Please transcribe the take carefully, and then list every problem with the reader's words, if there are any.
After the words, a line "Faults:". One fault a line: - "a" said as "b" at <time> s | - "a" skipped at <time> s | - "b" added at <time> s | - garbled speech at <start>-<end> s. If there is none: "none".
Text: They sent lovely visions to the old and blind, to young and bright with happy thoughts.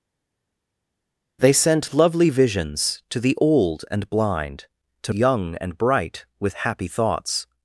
They sent lovely visions to the old and blind, to young and bright with happy thoughts.
Faults:
none